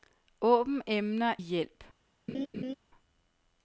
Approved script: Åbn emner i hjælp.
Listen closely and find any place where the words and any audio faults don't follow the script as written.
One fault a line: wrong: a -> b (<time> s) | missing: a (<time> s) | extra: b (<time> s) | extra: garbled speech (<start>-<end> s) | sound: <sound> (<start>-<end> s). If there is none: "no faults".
missing: i (1.4 s)
sound: laugh (2.3-2.7 s)